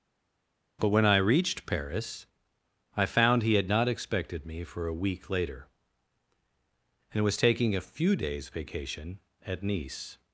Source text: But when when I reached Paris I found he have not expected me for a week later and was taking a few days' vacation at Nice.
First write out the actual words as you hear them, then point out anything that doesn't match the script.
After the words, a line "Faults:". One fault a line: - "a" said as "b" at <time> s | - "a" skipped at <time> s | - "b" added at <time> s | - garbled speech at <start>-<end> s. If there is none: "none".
But when I reached Paris I found he had not expected me for a week later and was taking a few days' vacation at Nice.
Faults:
- "when" skipped at 1.1 s
- "have" said as "had" at 3.5 s